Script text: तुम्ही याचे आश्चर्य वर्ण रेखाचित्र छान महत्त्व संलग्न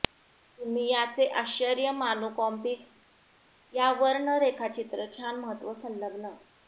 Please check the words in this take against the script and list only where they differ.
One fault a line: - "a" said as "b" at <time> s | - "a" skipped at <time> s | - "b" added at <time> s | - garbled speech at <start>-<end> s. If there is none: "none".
- "मानू कॉमिक्स या" added at 1.9 s